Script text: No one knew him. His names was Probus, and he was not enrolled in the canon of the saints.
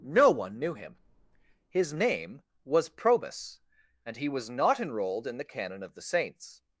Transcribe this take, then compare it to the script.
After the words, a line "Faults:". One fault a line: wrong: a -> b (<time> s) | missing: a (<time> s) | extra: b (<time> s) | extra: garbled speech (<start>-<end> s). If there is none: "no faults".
No one knew him. His name was Probus, and he was not enrolled in the canon of the saints.
Faults:
wrong: names -> name (1.9 s)